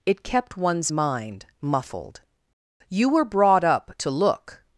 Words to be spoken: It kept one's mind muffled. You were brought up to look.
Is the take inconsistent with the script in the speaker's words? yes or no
no